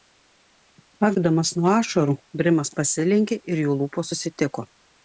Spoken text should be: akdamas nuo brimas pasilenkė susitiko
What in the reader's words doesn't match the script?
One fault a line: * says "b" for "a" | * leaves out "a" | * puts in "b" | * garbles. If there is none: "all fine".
* puts in "ašarų"
* puts in "ir jų lūpos"